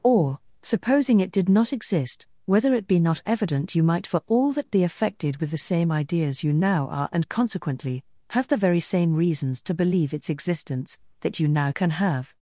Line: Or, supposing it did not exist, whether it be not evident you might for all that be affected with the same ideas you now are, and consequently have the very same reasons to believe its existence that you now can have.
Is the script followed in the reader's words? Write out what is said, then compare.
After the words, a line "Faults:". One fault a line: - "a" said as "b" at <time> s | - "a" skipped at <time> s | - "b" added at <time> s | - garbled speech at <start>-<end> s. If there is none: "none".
Or, supposing it did not exist, whether it be not evident you might for all that be affected with the same ideas you now are, and consequently have the very same reasons to believe its existence that you now can have.
Faults:
none